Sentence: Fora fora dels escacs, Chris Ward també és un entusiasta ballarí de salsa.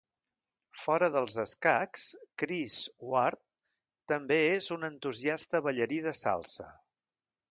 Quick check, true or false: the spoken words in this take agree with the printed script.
false